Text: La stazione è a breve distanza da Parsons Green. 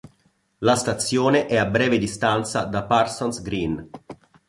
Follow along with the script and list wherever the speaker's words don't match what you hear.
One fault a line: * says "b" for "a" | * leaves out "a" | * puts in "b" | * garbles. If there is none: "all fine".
all fine